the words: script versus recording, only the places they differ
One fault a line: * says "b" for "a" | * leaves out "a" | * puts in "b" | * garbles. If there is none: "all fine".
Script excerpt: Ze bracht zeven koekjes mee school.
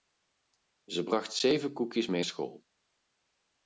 all fine